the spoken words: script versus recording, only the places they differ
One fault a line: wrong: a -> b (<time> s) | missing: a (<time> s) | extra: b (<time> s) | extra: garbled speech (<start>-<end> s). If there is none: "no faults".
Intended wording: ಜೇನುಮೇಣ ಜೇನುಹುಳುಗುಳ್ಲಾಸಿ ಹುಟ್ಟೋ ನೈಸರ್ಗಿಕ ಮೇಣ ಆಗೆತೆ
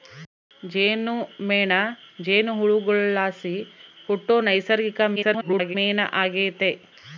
extra: garbled speech (5.2-5.8 s)